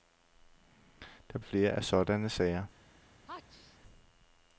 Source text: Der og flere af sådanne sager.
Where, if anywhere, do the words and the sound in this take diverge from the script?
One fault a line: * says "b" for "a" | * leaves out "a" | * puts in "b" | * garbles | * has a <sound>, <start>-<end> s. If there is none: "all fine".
* has a sneeze, 3.3-3.8 s